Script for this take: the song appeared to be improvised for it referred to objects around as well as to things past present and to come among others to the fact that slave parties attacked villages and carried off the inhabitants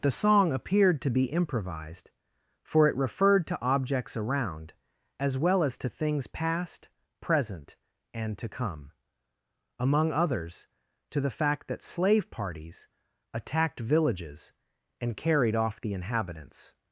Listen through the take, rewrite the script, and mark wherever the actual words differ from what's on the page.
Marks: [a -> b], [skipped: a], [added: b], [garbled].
the song appeared to be improvised for it referred to objects around as well as to things past present and to come among others to the fact that slave parties attacked villages and carried off the inhabitants